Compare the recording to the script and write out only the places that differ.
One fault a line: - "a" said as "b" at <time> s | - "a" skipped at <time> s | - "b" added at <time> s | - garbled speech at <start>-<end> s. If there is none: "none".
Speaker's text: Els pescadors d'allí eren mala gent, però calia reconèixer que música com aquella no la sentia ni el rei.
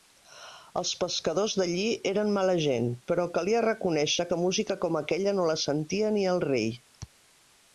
none